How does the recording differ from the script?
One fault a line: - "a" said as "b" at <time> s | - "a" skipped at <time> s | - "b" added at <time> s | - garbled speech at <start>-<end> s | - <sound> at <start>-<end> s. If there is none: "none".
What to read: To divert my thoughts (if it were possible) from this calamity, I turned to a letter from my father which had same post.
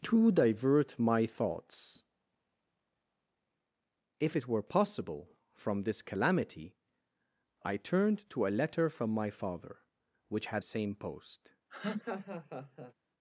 - laugh at 11.7-12.9 s